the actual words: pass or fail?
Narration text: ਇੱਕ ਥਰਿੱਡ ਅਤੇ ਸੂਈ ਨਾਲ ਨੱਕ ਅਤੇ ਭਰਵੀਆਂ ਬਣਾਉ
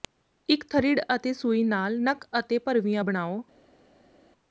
pass